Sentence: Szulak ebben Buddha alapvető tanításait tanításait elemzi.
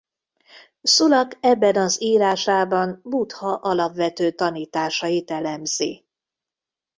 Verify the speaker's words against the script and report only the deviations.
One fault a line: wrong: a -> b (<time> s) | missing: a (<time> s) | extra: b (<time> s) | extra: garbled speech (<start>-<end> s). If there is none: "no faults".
extra: az írásában (1.7 s)
missing: tanításait (5.3 s)